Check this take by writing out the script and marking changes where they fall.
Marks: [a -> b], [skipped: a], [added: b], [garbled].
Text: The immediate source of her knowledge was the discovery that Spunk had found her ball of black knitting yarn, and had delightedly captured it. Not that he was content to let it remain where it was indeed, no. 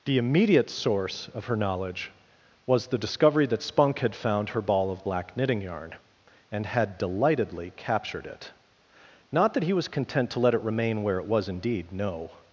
The immediate source of her knowledge was the discovery that Spunk had found her ball of black knitting yarn, and had delightedly captured it. Not that he was content to let it remain where it was indeed, no.